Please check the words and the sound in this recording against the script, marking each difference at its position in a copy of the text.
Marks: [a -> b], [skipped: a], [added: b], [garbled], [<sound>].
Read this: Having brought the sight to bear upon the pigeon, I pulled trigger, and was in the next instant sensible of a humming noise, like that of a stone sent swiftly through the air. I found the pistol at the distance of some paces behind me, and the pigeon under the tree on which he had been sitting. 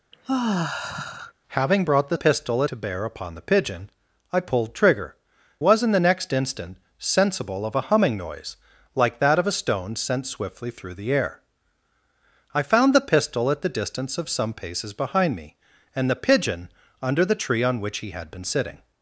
[sigh] Having brought the [sight -> pistol] to bear upon the pigeon, I pulled trigger, [skipped: and] was in the next instant sensible of a humming noise, like that of a stone sent swiftly through the air. I found the pistol at the distance of some paces behind me, and the pigeon under the tree on which he had been sitting.